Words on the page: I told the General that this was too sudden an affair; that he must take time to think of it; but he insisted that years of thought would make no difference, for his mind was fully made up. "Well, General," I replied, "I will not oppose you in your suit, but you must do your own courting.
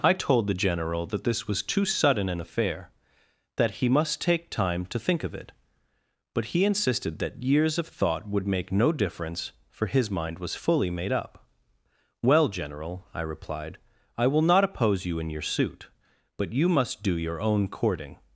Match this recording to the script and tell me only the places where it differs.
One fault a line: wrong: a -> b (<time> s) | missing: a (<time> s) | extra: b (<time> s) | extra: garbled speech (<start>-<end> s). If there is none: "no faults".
no faults